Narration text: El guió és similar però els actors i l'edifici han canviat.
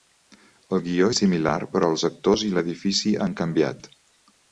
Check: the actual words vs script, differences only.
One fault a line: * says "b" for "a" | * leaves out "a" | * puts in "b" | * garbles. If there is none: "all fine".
all fine